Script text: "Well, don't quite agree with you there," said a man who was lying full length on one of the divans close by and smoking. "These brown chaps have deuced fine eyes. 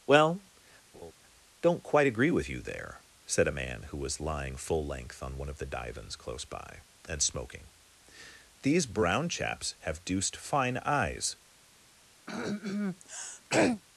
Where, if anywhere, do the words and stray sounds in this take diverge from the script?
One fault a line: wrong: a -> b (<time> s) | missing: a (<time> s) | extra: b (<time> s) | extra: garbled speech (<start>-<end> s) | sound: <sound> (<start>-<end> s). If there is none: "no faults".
sound: laugh (0.9-1.1 s)
sound: throat clearing (12.3-13.8 s)